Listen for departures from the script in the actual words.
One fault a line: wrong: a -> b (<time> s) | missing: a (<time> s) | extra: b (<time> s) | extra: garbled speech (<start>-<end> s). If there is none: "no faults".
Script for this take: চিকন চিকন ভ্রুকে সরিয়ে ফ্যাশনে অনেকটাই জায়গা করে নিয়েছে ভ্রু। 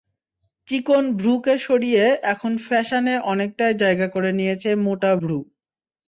missing: চিকন (1.0 s)
extra: এখন (2.3 s)
extra: মোটা (4.8 s)